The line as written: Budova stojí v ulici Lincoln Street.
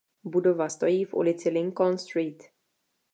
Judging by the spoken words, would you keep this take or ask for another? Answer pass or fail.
pass